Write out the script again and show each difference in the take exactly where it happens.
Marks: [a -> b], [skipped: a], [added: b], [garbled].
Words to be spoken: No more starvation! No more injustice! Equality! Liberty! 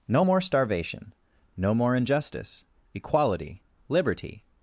No more starvation! No more injustice! Equality! Liberty!